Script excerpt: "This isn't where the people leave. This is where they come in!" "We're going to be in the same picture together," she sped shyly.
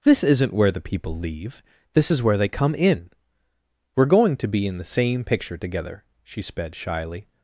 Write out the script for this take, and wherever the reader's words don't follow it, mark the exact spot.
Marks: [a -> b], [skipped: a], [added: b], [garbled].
"This isn't where the people leave. This is where they come in!" "We're going to be in the same picture together," she sped shyly.